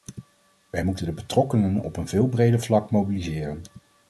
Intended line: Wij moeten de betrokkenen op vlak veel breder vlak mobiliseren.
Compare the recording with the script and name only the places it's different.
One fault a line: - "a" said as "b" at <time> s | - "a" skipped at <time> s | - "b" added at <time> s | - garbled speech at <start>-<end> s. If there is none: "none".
- "vlak" said as "een" at 2.0 s